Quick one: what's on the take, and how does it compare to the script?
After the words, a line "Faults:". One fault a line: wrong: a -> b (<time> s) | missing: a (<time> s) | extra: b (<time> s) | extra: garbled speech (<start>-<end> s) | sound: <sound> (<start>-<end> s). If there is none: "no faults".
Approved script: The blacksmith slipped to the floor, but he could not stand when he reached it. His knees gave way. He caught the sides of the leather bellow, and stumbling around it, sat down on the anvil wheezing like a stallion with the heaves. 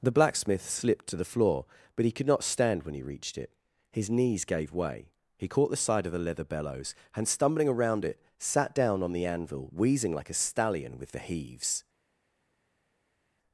The blacksmith slipped to the floor, but he could not stand when he reached it. His knees gave way. He caught the side of the leather bellows, and stumbling around it, sat down on the anvil wheezing like a stallion with the heaves.
Faults:
wrong: sides -> side (5.8 s)
wrong: bellow -> bellows (6.4 s)